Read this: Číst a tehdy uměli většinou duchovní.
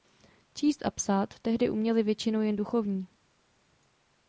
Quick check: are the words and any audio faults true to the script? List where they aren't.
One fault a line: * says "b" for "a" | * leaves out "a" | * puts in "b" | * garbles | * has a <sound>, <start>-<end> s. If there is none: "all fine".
* puts in "psát"
* puts in "jen"